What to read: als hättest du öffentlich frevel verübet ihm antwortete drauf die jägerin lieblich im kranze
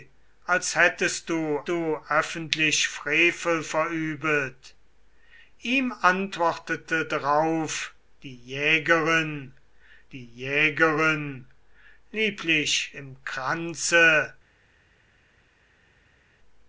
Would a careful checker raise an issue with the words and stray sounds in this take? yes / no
yes